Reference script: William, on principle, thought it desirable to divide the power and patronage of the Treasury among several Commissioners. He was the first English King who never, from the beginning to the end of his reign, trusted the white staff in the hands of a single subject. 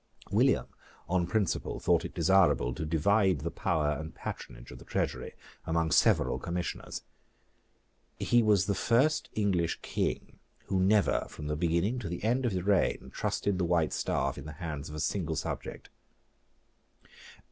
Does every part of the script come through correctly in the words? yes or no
yes